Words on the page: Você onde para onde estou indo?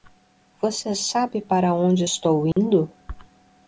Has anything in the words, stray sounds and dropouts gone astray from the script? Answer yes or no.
yes